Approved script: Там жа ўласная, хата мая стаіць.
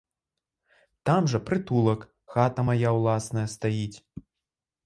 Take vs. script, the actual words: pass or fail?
fail